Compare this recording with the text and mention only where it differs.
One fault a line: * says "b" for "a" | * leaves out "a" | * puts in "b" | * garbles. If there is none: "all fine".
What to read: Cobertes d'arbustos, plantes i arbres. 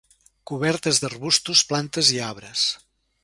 all fine